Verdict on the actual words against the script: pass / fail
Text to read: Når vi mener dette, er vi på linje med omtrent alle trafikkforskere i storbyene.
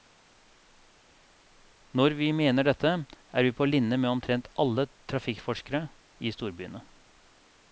pass